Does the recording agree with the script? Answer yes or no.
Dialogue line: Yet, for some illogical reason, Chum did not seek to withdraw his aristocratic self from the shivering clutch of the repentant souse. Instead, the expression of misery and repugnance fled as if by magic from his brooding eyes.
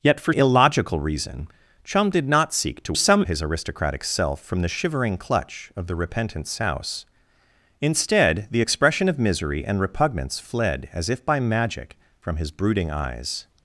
no